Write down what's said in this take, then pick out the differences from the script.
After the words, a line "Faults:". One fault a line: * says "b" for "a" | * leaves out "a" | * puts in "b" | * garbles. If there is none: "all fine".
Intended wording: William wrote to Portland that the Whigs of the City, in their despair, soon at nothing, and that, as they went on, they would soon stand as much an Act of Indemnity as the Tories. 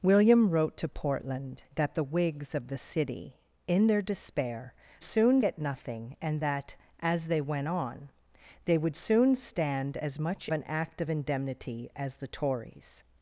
William wrote to Portland that the Whigs of the City, in their despair, soon at nothing, and that, as they went on, they would soon stand as much an Act of Indemnity as the Tories.
Faults:
all fine